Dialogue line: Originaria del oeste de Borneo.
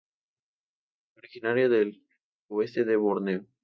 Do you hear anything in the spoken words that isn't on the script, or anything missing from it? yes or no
no